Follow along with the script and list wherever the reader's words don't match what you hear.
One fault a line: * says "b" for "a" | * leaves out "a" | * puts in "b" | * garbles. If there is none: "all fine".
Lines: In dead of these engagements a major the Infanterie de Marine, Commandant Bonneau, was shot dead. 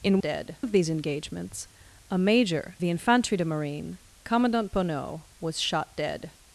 all fine